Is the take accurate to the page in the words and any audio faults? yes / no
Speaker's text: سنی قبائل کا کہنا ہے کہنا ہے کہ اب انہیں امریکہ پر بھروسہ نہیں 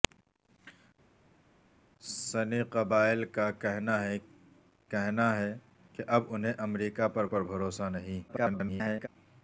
no